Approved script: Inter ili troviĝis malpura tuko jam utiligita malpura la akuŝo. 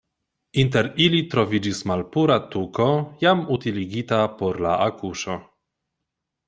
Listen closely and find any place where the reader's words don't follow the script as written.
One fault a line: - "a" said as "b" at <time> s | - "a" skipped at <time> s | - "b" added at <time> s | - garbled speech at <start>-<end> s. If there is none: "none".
- "malpura" said as "por" at 4.4 s